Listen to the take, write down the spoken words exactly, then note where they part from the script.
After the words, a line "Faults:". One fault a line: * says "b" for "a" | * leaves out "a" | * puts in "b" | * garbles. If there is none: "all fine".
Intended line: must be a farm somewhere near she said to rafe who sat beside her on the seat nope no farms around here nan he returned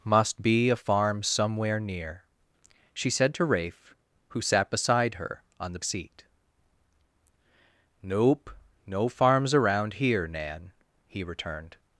must be a farm somewhere near she said to rafe who sat beside her on the seat nope no farms around here nan he returned
Faults:
all fine